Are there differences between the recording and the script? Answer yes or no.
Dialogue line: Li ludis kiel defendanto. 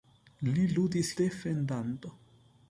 yes